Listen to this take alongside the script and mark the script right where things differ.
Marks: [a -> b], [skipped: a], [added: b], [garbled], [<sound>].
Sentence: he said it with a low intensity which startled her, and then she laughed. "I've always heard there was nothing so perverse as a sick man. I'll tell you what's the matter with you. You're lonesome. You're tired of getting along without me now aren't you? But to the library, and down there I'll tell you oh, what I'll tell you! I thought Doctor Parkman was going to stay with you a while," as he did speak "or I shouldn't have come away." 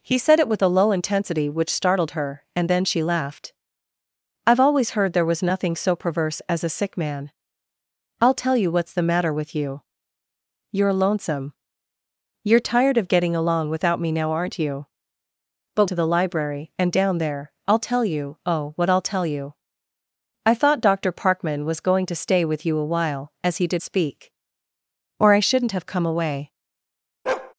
he said it with a low intensity which startled her, and then she laughed. "I've always heard there was nothing so perverse as a sick man. I'll tell you what's the matter with you. You're lonesome. You're tired of getting along without me now aren't you? But to the library, and down there I'll tell you oh, what I'll tell you! I thought Doctor Parkman was going to stay with you a while," as he did speak "or I shouldn't have come away." [bark]